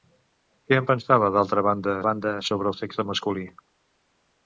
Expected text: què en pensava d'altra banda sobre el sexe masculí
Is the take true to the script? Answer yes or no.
no